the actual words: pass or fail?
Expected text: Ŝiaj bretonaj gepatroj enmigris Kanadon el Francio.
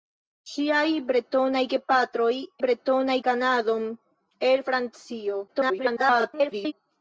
fail